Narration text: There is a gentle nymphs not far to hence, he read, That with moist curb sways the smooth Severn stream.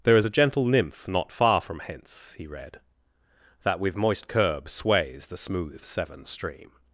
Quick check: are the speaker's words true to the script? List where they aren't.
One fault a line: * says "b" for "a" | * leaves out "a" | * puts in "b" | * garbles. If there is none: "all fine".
* says "nymph" for "nymphs"
* says "from" for "to"